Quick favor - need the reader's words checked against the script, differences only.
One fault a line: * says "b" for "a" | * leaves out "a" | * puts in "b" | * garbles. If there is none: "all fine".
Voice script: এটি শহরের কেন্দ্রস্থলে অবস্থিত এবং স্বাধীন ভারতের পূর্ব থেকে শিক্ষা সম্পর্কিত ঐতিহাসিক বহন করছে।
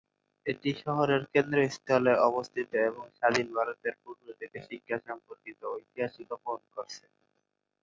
all fine